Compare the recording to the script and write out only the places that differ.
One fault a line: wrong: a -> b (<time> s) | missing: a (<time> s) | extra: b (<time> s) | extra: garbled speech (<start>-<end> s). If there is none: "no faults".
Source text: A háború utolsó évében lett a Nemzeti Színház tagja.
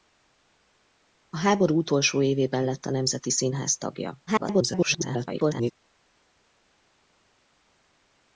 extra: garbled speech (4.3-5.7 s)